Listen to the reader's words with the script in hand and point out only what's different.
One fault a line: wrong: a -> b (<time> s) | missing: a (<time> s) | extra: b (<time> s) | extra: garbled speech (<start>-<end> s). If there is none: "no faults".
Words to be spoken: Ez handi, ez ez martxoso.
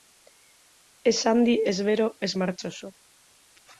extra: bero (1.9 s)